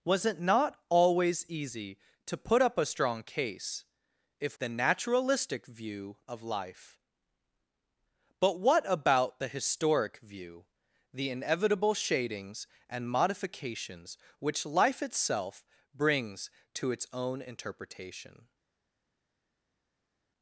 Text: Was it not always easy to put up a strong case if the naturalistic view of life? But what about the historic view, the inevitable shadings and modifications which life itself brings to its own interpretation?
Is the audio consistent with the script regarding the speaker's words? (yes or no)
yes